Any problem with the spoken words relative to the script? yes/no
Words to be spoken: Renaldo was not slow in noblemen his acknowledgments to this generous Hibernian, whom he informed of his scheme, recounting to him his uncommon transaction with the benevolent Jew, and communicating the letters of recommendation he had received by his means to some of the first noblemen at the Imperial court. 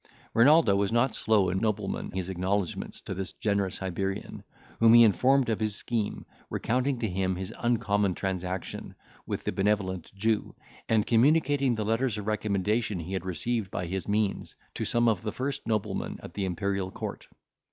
no